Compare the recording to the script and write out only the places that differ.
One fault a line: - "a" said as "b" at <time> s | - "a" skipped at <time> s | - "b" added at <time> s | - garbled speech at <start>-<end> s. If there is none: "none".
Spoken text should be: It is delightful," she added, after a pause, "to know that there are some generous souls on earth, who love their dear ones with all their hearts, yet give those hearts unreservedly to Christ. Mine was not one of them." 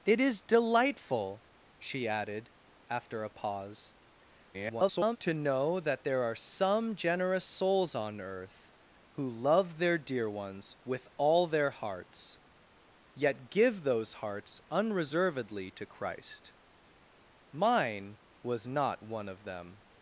- garbled speech at 4.5-5.2 s